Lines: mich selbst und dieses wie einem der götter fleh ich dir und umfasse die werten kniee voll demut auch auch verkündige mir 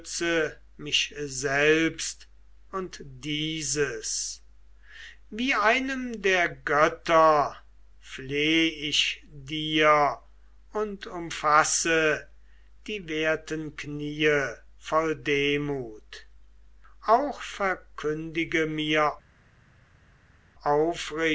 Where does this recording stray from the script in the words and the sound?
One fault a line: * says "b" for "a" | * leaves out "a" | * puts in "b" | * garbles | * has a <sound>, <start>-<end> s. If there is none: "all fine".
* leaves out "auch"